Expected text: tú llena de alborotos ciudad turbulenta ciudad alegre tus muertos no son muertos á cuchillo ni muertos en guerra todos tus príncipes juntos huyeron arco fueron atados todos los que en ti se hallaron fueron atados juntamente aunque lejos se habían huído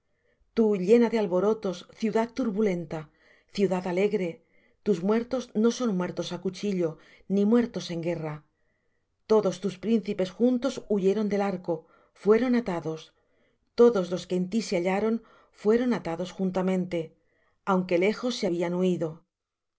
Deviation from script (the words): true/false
true